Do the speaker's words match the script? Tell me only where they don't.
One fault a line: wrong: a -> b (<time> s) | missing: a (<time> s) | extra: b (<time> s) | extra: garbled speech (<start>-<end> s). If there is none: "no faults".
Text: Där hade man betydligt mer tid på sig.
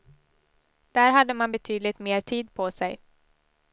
no faults